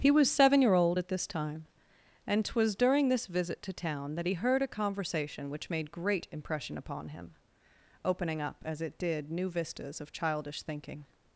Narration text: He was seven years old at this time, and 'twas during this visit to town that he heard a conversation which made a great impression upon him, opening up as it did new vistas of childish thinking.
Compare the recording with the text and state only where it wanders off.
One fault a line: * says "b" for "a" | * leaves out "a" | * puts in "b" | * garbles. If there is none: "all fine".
* says "year" for "years"
* leaves out "a"